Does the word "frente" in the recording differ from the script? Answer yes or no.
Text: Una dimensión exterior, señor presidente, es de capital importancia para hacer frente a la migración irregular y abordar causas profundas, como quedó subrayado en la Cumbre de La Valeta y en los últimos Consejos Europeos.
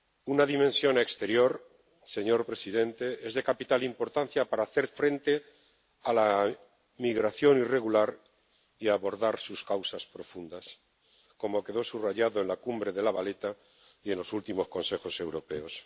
no